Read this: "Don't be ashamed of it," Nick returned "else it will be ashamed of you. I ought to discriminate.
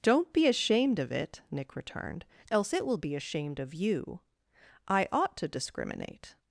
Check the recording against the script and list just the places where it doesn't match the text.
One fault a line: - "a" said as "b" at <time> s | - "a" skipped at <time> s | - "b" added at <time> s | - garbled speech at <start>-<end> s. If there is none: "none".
none